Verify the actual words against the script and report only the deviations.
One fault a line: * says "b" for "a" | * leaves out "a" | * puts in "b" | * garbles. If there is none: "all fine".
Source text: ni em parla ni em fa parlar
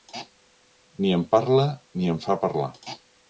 all fine